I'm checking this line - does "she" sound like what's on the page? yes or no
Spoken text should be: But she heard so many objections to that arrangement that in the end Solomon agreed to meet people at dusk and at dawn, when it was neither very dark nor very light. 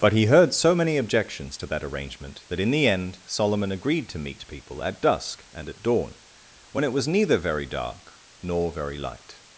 no